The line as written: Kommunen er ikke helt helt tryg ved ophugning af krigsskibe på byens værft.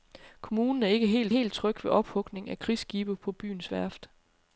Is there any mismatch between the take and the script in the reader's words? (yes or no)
no